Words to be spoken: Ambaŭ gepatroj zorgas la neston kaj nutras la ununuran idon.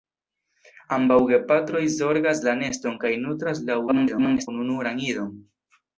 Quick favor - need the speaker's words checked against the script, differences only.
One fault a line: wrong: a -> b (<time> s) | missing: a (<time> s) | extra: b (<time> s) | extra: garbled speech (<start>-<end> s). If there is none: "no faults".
extra: garbled speech (3.9-4.5 s)